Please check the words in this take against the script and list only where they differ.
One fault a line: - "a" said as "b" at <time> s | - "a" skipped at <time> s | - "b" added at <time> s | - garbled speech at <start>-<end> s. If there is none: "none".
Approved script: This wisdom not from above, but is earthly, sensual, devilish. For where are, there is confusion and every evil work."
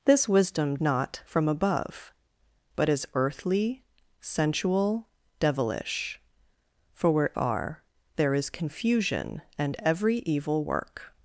none